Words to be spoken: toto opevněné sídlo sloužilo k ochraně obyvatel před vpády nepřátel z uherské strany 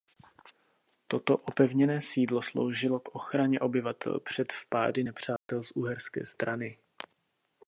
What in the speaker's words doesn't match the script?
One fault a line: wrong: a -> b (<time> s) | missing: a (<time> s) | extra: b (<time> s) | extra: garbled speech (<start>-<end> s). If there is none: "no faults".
no faults